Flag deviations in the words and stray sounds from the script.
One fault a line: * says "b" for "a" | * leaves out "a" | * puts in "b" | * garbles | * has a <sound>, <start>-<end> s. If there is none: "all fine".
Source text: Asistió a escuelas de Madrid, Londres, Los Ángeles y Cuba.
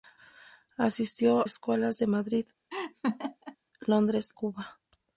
* leaves out "a"
* has a laugh, 2.7-3.6 s
* leaves out "Los Ángeles y"